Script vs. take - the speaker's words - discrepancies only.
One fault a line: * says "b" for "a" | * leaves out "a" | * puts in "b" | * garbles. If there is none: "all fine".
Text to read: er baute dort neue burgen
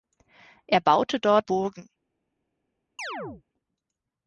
* leaves out "neue"